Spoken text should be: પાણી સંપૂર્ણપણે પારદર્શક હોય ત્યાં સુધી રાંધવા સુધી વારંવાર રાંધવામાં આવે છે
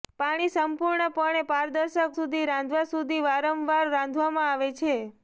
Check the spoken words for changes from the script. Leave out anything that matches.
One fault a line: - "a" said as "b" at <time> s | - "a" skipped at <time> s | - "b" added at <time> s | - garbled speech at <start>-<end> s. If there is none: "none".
- "હોય ત્યાં" skipped at 2.2 s